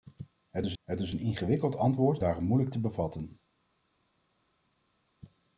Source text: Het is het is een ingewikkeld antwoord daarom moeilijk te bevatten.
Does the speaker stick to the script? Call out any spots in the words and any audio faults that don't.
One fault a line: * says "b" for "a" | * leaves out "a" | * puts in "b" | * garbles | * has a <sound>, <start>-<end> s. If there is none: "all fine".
all fine